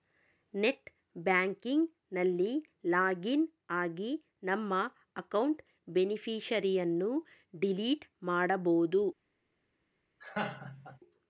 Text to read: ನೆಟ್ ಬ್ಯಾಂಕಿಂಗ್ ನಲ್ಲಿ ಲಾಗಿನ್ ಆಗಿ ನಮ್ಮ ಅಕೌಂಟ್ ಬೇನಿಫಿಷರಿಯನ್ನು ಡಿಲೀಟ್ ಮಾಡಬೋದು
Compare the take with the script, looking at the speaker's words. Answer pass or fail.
pass